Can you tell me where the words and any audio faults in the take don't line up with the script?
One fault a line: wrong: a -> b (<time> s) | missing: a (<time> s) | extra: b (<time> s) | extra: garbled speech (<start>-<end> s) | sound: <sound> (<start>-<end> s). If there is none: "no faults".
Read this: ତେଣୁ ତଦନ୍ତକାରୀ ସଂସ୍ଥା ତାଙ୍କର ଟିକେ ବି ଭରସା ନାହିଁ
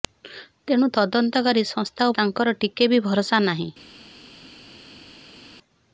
no faults